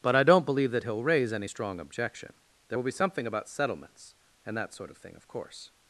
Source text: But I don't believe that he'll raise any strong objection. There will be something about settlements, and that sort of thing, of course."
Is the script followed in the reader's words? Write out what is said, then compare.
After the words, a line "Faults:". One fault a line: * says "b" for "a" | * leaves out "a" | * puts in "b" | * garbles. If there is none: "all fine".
But I don't believe that he'll raise any strong objection. There will be something about settlements, and that sort of thing, of course."
Faults:
all fine